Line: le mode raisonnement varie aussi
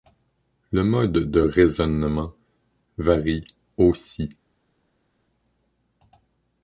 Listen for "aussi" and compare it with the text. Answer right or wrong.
right